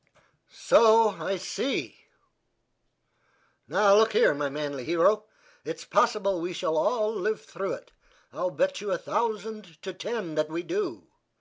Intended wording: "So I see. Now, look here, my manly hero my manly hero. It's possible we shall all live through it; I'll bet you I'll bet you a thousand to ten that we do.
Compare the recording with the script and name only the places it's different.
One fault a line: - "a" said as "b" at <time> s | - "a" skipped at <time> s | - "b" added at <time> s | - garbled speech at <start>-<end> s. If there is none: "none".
- "my manly hero" skipped at 5.3 s
- "I'll bet you" skipped at 8.9 s